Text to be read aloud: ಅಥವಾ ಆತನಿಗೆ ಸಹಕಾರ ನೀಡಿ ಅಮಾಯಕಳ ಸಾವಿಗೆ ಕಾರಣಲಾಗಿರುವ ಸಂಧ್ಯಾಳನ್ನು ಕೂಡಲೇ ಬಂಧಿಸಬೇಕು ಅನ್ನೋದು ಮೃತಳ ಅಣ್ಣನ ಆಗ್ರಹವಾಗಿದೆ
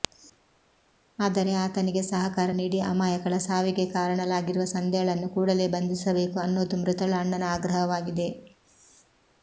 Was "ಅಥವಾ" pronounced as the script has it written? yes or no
no